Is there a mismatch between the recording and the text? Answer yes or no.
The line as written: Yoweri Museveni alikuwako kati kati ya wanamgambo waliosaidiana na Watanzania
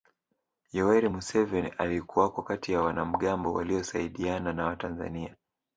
yes